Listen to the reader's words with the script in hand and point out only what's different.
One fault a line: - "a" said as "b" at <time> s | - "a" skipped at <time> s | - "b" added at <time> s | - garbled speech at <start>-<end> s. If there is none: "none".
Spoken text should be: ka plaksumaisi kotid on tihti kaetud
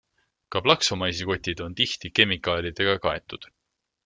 - "kemikaalidega" added at 2.2 s